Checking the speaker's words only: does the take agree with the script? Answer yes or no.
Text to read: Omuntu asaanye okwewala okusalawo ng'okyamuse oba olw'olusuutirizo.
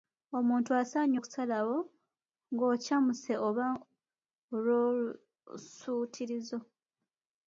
no